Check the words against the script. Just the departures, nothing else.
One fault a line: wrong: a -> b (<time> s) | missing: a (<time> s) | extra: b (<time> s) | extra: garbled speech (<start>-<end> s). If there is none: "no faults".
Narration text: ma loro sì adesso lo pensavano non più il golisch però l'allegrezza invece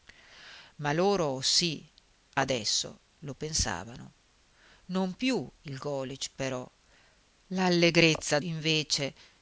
no faults